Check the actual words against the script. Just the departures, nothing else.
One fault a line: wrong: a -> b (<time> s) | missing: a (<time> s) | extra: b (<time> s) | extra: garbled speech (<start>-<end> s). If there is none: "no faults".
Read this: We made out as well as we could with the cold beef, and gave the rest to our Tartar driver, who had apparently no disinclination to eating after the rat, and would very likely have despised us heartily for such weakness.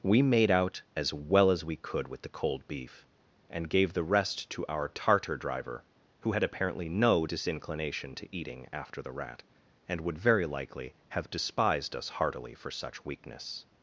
no faults